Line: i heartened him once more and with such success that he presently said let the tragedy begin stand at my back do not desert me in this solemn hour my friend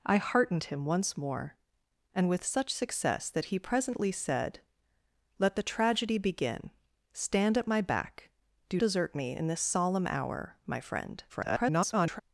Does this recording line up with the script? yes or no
no